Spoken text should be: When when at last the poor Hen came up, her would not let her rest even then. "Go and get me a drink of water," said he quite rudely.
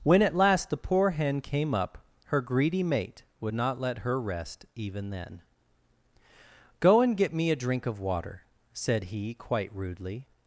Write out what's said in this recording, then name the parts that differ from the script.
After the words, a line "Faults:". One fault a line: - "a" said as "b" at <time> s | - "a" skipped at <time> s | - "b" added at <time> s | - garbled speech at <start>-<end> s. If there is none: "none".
When at last the poor Hen came up, her greedy mate would not let her rest even then. "Go and get me a drink of water," said he quite rudely.
Faults:
- "when" skipped at 0.2 s
- "greedy mate" added at 2.4 s